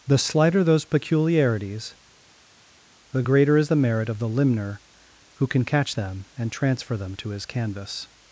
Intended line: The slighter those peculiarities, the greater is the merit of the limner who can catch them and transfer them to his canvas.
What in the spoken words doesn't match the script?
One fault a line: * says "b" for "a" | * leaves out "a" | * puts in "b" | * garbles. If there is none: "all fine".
all fine